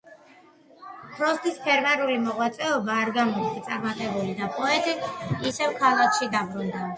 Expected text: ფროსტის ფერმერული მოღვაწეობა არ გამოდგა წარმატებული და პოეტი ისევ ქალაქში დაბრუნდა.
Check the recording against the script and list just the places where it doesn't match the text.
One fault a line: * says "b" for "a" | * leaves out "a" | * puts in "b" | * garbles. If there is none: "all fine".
all fine